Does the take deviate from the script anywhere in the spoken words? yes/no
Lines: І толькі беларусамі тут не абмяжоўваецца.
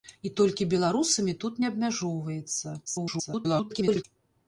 yes